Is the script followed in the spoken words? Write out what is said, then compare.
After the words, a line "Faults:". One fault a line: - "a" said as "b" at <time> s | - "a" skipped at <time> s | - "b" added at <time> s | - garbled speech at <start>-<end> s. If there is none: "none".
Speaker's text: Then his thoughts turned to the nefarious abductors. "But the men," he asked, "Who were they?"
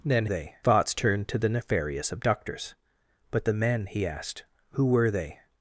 Then they thoughts turned to the nefarious abductors. "But the men," he asked, "Who were they?"
Faults:
- "his" said as "they" at 0.3 s